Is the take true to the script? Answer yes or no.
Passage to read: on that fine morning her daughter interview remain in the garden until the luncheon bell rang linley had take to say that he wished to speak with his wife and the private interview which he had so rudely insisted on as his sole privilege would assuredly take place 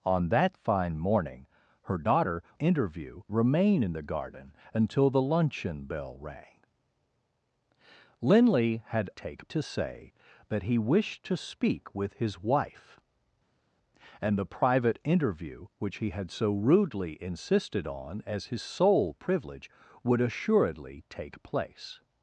yes